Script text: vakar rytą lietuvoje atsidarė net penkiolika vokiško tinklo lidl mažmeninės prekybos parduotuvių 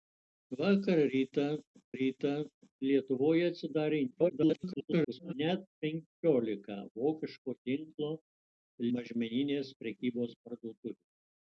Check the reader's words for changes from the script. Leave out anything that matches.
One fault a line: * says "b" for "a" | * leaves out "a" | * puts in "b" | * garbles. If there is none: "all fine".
* puts in "rytą"
* garbles
* leaves out "lidl"